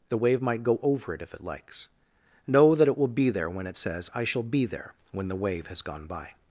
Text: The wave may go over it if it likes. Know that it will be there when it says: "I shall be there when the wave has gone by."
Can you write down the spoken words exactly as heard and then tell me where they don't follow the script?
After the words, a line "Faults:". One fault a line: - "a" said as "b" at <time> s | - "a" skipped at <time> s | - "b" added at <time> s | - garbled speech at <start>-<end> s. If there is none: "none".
The wave might go over it if it likes. Know that it will be there when it says: "I shall be there when the wave has gone by."
Faults:
- "may" said as "might" at 0.4 s